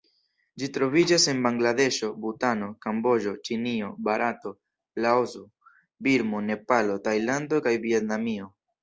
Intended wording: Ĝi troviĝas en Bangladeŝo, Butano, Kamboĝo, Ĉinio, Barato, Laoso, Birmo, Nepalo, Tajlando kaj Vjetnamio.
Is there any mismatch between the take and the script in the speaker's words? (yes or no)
no